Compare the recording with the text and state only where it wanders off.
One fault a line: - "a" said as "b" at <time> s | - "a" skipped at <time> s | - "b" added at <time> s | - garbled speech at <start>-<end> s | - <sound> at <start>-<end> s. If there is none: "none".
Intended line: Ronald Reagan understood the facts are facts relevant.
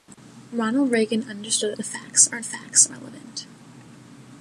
none